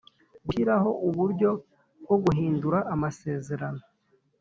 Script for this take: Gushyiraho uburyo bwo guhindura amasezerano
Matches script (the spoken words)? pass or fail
pass